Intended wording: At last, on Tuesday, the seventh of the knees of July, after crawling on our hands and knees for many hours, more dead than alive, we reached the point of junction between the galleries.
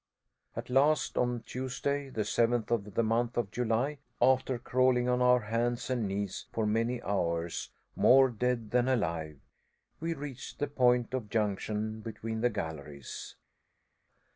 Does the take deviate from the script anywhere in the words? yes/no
yes